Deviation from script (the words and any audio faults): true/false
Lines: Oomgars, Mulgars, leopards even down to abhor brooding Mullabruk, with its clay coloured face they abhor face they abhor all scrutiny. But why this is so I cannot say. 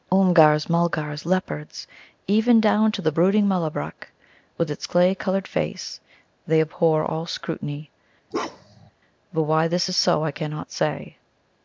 true